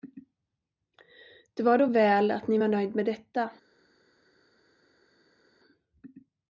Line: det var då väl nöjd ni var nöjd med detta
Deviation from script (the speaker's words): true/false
true